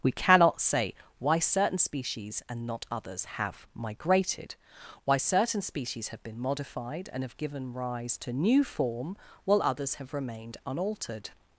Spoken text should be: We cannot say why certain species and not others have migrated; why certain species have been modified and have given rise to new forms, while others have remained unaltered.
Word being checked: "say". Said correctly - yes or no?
yes